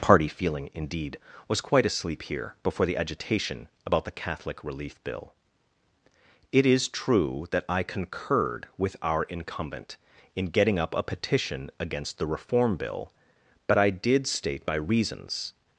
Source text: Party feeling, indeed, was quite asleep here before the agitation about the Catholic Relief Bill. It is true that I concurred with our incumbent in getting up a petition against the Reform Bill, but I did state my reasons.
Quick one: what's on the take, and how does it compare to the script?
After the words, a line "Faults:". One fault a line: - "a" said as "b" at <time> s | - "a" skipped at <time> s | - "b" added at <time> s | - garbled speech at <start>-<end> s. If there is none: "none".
Party feeling, indeed, was quite asleep here before the agitation about the Catholic Relief Bill. It is true that I concurred with our incumbent in getting up a petition against the Reform Bill, but I did state my reasons.
Faults:
none